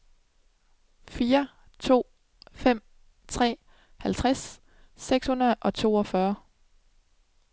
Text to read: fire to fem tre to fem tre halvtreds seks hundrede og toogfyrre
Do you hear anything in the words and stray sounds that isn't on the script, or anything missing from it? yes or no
yes